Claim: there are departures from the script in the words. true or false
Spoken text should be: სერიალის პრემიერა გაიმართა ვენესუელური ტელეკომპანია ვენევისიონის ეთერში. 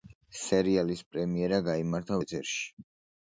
true